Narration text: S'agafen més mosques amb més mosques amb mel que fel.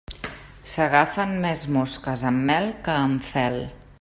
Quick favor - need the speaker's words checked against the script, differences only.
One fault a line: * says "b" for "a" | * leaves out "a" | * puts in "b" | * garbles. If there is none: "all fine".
* says "mel que" for "més mosques"
* leaves out "mel que"